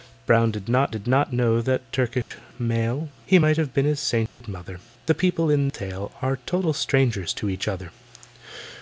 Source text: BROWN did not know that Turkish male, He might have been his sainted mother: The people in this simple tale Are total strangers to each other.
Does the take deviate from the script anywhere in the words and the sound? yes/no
yes